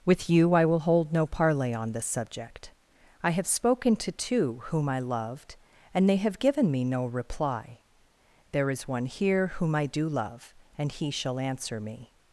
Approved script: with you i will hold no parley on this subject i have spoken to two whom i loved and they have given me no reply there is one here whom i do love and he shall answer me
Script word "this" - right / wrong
right